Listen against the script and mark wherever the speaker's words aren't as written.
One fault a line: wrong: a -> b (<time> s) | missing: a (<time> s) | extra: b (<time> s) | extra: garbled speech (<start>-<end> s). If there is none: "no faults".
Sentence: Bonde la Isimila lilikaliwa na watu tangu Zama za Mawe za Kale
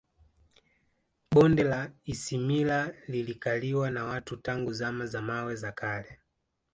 no faults